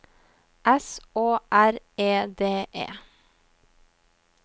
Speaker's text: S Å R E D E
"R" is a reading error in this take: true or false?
false